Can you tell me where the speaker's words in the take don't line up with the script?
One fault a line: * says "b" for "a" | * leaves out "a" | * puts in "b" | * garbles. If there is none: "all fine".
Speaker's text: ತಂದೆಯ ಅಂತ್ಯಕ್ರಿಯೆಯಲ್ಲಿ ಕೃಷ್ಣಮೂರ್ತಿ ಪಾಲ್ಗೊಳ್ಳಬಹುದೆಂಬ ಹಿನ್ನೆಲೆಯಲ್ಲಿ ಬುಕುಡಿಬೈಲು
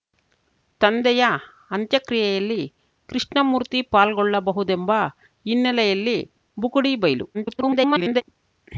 * garbles